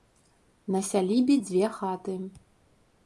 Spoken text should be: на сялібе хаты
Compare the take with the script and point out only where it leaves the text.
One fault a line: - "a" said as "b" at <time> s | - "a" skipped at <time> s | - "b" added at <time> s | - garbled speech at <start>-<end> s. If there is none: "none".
- "дзве" added at 1.3 s